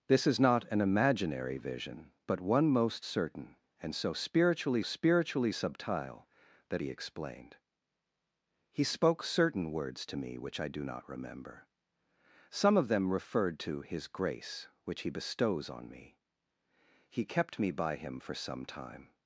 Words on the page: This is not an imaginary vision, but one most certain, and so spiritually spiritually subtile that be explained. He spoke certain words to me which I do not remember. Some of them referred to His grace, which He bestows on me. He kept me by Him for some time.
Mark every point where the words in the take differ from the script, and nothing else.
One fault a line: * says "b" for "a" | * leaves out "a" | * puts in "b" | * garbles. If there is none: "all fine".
all fine